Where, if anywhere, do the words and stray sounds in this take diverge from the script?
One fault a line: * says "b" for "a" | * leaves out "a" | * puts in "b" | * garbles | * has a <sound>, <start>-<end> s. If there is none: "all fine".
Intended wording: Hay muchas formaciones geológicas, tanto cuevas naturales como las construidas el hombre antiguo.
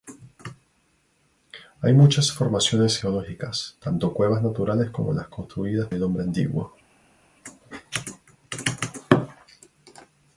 all fine